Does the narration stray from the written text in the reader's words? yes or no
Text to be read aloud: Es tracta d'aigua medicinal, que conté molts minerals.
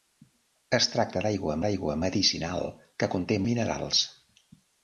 yes